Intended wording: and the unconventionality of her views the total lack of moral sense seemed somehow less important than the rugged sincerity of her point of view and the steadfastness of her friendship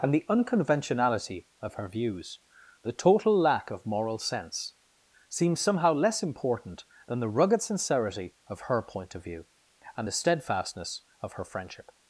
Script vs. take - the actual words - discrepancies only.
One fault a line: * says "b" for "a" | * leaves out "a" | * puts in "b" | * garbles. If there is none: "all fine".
* says "seems" for "seemed"